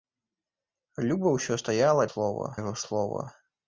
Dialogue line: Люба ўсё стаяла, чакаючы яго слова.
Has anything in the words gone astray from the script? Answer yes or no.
yes